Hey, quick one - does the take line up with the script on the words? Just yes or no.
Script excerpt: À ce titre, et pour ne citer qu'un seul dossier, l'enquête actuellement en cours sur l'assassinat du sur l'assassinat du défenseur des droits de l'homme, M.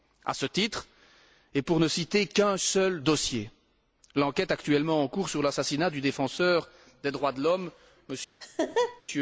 no